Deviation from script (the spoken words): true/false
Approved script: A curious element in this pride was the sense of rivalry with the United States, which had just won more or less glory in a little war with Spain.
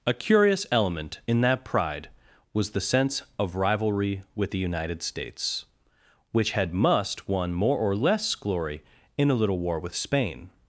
true